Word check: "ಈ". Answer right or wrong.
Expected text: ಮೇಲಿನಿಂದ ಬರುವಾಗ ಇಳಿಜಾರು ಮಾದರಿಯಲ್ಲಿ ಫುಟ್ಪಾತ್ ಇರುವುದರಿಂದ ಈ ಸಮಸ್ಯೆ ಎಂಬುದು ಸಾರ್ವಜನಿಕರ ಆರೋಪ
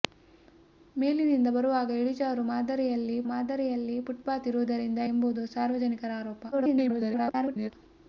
wrong